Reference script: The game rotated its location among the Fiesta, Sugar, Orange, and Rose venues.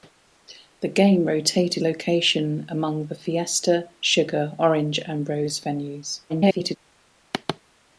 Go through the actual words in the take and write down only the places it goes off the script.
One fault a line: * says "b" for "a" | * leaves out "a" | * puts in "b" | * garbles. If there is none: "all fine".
* leaves out "its"
* garbles